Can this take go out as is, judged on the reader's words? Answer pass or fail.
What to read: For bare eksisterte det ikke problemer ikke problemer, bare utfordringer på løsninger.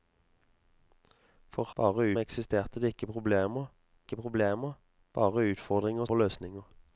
pass